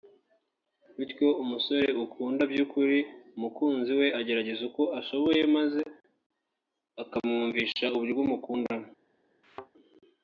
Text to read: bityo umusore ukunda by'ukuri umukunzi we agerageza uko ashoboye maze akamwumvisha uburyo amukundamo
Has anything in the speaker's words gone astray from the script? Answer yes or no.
no